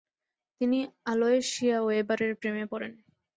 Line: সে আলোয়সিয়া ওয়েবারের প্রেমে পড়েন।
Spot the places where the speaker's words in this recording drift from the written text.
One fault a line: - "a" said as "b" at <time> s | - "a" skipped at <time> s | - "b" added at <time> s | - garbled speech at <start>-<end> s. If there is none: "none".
- "সে" said as "তিনি" at 0.6 s